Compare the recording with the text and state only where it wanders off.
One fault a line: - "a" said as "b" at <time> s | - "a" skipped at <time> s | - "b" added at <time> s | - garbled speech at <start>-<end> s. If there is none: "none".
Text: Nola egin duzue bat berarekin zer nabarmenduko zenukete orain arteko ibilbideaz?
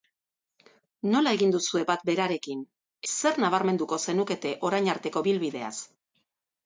none